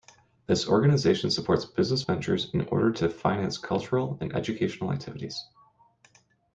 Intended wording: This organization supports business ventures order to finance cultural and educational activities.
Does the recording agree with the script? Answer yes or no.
no